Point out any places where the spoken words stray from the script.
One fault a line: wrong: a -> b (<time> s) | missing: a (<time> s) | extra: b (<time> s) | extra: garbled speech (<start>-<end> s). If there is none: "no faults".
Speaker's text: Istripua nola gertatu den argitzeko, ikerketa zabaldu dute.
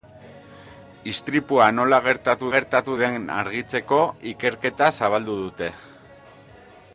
extra: gertatu (2.5 s)